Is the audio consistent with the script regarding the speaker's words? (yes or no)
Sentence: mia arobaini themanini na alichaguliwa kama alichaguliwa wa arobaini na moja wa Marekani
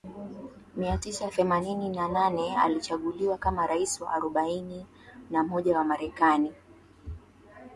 no